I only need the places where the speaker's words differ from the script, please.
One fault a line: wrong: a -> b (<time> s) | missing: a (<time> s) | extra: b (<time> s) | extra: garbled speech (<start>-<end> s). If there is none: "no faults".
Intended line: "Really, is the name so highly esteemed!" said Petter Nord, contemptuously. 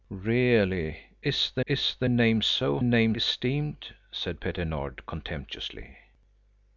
extra: is the (1.6 s)
wrong: highly -> name (2.8 s)